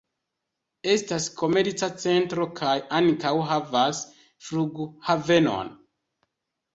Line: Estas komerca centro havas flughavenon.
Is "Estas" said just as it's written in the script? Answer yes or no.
yes